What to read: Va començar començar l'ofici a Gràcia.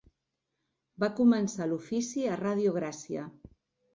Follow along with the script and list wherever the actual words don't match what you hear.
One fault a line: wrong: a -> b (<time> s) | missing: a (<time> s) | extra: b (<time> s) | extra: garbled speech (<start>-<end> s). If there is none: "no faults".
missing: començar (1.7 s)
extra: Ràdio (2.4 s)